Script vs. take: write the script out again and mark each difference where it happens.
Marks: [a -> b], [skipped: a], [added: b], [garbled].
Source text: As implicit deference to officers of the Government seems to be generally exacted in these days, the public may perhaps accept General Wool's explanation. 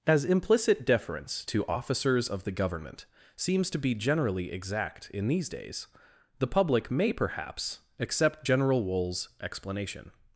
As implicit deference to officers of the Government seems to be generally [exacted -> exact] in these days, the public may perhaps accept General Wool's explanation.